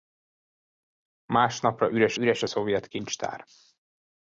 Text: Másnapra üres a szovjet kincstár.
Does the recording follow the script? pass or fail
fail